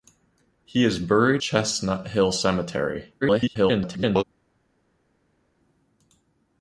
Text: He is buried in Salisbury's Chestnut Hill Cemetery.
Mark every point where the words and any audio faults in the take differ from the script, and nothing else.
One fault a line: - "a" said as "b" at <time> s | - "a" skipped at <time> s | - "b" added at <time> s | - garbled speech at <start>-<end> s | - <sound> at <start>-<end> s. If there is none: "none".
- "in Salisbury's" skipped at 1.4 s
- garbled speech at 3.2-4.2 s